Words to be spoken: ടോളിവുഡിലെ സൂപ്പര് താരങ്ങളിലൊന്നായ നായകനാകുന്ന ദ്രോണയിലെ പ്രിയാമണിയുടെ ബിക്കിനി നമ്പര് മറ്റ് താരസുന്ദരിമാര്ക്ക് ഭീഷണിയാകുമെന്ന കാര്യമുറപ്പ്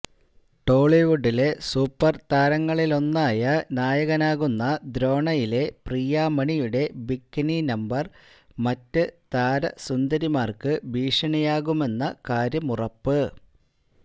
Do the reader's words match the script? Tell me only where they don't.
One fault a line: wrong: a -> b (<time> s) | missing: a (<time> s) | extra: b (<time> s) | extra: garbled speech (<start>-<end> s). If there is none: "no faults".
no faults